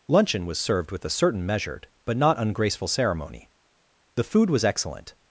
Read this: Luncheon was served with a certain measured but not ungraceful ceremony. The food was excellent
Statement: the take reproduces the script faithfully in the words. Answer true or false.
true